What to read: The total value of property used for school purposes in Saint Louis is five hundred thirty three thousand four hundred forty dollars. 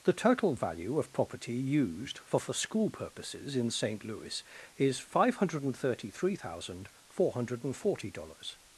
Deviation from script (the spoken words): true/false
true